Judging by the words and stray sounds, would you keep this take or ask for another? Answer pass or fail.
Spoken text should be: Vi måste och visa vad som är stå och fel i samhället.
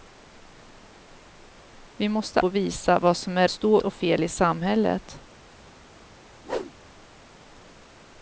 fail